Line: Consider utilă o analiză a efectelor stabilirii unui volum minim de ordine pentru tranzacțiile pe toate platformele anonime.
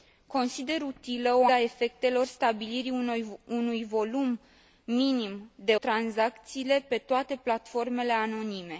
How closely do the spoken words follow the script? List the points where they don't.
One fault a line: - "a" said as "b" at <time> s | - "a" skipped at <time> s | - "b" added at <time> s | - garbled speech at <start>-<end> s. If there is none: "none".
- "analiză" skipped at 1.4 s
- "ordine pentru" skipped at 5.7 s